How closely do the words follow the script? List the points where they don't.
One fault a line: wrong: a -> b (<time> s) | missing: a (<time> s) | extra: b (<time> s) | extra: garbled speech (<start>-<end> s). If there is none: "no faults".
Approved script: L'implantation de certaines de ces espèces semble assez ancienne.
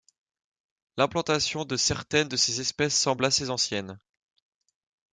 no faults